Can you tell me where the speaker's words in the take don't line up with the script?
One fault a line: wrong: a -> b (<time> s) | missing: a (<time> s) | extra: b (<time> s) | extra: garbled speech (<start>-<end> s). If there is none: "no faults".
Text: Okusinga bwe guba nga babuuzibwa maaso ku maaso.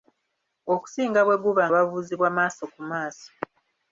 missing: nga (1.6 s)